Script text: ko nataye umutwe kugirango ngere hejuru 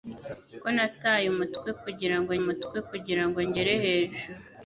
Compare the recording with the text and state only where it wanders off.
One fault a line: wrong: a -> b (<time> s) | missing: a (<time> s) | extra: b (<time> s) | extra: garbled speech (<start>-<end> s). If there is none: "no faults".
extra: umutwe kugirango (2.4 s)